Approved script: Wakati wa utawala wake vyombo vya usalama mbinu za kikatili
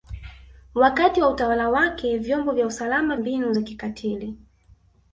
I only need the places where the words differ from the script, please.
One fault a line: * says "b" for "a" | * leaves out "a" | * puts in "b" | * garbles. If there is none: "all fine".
all fine